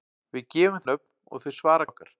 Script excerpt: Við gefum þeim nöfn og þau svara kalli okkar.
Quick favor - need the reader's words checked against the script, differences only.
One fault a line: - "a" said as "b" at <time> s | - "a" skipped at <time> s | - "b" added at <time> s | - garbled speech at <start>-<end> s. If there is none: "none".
- "þeim" skipped at 0.8 s
- "kalli" skipped at 1.9 s